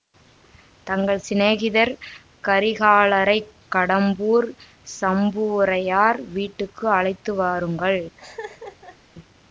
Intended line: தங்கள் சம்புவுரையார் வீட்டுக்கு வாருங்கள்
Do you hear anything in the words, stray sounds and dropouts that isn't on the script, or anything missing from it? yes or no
yes